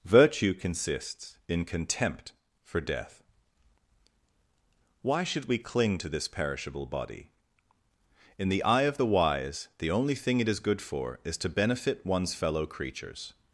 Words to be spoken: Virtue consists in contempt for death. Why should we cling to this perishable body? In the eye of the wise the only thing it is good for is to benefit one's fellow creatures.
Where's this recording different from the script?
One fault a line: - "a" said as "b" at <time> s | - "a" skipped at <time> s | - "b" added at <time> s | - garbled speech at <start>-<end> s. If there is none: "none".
none